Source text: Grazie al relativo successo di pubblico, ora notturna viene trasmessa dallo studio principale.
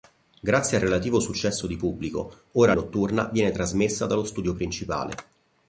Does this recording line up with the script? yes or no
yes